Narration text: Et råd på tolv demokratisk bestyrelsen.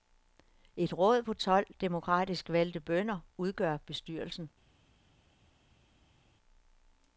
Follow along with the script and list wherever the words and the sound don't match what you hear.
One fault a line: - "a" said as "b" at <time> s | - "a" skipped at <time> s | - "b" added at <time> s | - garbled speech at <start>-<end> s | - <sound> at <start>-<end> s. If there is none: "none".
- "valgte bønder udgør" added at 2.5 s